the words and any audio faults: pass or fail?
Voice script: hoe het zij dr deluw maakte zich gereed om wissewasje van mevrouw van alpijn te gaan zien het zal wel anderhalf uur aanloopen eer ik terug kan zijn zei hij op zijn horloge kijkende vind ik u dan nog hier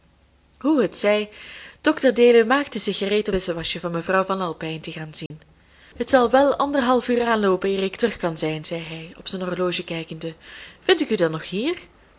fail